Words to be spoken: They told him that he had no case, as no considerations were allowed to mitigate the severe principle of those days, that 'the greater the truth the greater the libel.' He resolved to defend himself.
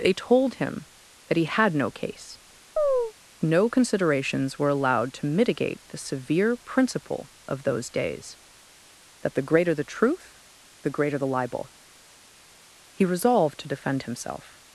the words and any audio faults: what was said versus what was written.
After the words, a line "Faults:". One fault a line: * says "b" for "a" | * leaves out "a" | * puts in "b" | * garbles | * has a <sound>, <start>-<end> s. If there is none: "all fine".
They told him that he had no case, no considerations were allowed to mitigate the severe principle of those days, that 'the greater the truth the greater the libel.' He resolved to defend himself.
Faults:
* leaves out "as"
* has a chirp, 2.8-3.1 s